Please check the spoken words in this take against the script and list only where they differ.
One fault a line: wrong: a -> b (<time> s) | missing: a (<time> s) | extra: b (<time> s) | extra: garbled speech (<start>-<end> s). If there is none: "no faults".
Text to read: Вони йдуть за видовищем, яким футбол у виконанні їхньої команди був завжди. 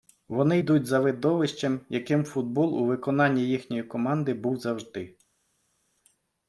no faults